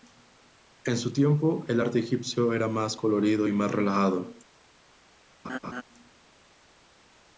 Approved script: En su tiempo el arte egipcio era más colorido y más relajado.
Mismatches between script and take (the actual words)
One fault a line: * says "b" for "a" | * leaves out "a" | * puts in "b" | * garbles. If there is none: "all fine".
all fine